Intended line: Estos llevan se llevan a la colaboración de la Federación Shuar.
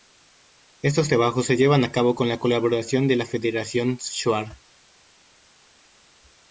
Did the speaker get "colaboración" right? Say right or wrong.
right